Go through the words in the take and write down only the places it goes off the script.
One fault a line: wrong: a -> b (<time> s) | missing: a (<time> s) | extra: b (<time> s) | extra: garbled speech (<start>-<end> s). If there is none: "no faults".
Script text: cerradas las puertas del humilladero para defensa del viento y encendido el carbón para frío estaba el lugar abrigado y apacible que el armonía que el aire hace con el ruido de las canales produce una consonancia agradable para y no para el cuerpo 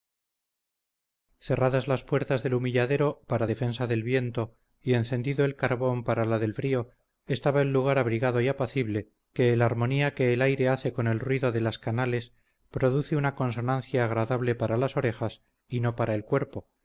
extra: la del (6.2 s)
extra: las orejas (14.8 s)